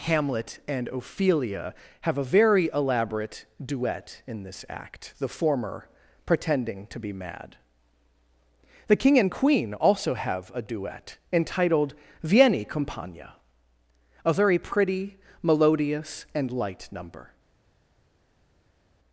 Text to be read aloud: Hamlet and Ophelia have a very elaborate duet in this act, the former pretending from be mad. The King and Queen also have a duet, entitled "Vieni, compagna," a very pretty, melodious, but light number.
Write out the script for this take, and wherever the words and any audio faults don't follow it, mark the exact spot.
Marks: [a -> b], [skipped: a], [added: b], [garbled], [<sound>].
Hamlet and Ophelia have a very elaborate duet in this act, the former pretending [from -> to] be mad. The King and Queen also have a duet, entitled "Vieni, compagna," a very pretty, melodious, [but -> and] light number.